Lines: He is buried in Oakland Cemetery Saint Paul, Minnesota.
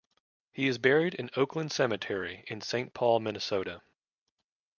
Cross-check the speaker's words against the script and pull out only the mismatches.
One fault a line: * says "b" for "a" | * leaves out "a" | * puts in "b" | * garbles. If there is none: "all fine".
* puts in "in"